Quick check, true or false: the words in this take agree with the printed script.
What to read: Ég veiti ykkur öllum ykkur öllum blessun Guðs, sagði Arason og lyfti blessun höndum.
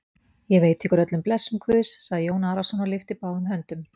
false